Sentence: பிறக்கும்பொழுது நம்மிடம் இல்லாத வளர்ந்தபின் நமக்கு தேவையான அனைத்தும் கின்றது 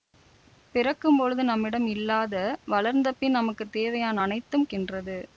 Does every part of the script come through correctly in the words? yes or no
yes